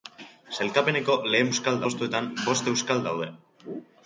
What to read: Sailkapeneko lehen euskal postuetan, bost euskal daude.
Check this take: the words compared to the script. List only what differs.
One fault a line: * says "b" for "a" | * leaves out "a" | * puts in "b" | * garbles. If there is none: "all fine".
all fine